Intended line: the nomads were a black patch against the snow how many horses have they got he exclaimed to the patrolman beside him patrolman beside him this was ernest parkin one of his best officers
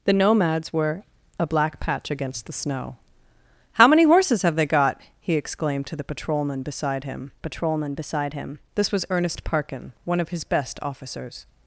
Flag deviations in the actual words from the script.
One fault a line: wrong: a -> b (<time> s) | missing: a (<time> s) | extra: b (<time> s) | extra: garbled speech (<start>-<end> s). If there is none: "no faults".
no faults